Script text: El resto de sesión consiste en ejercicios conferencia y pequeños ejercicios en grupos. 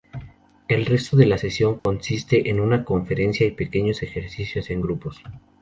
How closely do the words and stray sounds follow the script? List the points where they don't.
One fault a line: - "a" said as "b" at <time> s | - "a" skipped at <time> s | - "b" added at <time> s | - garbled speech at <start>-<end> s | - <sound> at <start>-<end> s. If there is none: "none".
- "la" added at 1.3 s
- dropout at 1.8-1.9 s
- "ejercicios" said as "una" at 2.6 s